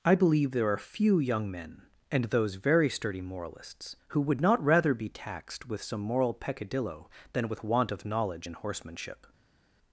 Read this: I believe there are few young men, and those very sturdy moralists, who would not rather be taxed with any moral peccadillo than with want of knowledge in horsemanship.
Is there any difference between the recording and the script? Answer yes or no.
yes